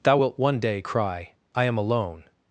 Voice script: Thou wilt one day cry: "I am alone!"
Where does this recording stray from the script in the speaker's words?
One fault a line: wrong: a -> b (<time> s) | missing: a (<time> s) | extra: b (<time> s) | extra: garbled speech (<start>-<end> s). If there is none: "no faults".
no faults